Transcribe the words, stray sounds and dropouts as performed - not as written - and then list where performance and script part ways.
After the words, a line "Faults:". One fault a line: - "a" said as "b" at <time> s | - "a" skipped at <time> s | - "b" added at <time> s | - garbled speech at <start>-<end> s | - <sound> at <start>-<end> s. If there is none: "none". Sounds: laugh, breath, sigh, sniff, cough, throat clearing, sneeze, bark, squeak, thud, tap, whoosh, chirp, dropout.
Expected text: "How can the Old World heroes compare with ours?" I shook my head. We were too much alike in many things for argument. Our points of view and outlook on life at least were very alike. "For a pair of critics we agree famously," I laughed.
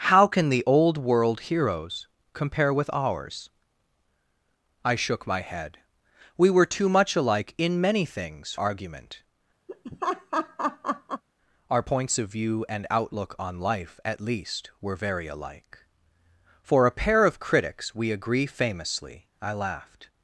"How can the Old World heroes compare with ours?" I shook my head. We were too much alike in many things argument. Our points of view and outlook on life at least were very alike. "For a pair of critics we agree famously," I laughed.
Faults:
- "for" skipped at 8.6 s
- laugh at 9.7-11.2 s